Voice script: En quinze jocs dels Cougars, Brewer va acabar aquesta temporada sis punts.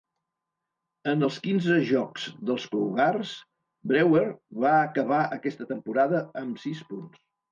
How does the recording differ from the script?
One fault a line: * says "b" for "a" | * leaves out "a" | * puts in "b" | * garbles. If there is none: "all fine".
* puts in "els"
* puts in "amb"